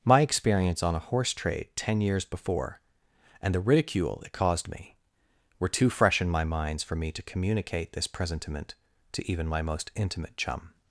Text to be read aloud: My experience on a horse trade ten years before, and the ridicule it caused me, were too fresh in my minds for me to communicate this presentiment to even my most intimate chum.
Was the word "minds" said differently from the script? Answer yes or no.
no